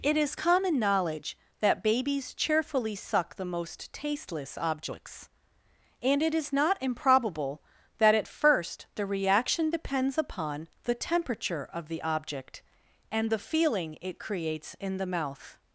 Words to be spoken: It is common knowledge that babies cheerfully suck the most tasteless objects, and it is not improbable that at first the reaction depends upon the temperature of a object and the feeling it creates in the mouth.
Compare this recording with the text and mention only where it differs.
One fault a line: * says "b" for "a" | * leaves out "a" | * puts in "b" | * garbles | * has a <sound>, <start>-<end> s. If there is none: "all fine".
* says "the" for "a"